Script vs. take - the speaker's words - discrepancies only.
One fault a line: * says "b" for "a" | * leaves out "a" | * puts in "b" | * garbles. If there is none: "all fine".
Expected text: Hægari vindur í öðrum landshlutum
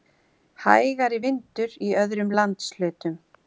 all fine